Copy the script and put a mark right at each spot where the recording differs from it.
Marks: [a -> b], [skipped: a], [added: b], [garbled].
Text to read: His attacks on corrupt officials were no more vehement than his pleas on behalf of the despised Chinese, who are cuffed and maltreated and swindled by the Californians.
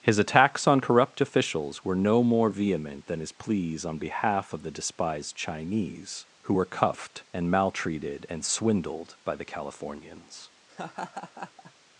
His attacks on corrupt officials were no more vehement than his pleas on behalf of the despised Chinese, who [are -> were] cuffed and maltreated and swindled by the Californians.